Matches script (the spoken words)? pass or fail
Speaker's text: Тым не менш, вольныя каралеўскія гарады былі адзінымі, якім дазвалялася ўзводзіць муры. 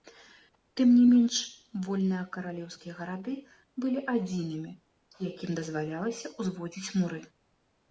pass